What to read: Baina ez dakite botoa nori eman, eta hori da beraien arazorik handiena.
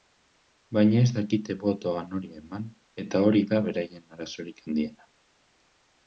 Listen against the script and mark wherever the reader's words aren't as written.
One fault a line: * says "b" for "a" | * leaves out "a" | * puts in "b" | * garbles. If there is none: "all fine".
all fine